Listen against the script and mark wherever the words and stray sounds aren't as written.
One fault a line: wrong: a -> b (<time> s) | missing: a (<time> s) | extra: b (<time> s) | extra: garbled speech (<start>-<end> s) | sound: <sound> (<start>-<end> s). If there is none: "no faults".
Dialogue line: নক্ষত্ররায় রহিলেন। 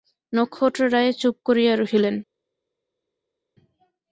extra: চুপ করিয়া (1.2 s)